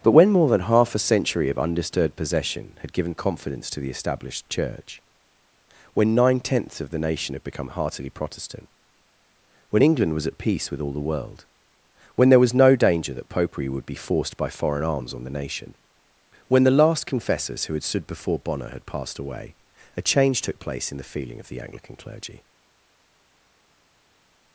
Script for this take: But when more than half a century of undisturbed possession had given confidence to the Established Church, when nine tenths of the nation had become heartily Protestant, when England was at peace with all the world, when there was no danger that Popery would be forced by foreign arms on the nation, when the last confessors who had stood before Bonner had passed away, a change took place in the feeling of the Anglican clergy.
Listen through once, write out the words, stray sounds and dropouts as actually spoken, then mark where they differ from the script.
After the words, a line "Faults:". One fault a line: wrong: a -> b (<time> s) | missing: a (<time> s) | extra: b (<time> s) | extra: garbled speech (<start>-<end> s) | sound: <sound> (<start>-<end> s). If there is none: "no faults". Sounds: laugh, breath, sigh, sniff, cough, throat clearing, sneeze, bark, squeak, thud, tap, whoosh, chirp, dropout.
But when more than half a century of undisturbed possession had given confidence to the Established Church, when nine tenths of the nation had become heartily Protestant, when England was at peace with all the world, when there was no danger that Popery would be forced by foreign arms on the nation, when the last confessors who had stood before Bonner had passed away, a change took place in the feeling of the Anglican clergy.
Faults:
no faults